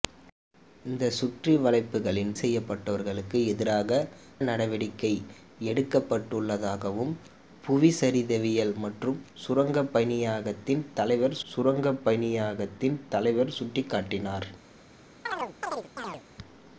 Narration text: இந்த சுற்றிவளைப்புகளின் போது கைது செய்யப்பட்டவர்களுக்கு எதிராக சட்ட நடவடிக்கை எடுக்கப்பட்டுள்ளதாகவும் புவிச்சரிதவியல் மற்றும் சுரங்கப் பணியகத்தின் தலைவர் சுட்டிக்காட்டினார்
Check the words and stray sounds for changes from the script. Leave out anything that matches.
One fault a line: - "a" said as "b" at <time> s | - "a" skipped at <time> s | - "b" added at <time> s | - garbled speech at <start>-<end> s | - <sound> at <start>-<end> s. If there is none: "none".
- "போது கைது" skipped at 2.3 s
- "சட்ட" skipped at 4.0 s
- "சுரங்கப் பணியகத்தின் தலைவர்" added at 11.5 s
- chirp at 15.3-16.2 s